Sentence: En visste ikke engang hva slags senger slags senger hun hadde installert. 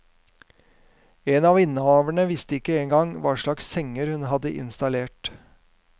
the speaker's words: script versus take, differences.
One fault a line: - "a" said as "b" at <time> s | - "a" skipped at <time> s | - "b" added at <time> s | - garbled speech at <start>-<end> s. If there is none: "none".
- "av innehaverne" added at 1.5 s
- "slags senger" skipped at 4.1 s